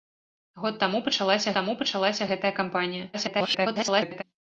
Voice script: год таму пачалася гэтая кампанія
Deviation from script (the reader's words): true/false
true